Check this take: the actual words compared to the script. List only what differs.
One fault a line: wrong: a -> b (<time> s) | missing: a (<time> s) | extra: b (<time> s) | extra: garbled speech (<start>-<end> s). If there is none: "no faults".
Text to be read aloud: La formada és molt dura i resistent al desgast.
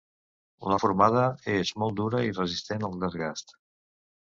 no faults